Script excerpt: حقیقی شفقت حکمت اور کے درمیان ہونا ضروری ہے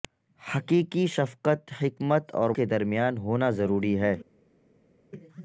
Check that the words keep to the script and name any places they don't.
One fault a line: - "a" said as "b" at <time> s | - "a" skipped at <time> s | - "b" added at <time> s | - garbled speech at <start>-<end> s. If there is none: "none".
none